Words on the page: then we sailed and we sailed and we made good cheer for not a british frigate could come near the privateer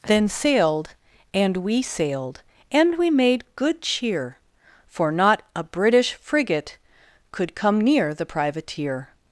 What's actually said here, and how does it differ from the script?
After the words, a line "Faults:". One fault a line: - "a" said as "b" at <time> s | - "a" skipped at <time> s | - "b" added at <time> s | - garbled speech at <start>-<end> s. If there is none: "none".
then sailed and we sailed and we made good cheer for not a british frigate could come near the privateer
Faults:
- "we" skipped at 0.3 s